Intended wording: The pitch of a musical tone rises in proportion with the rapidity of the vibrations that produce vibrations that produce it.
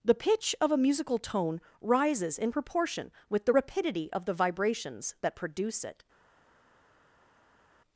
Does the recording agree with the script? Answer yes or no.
no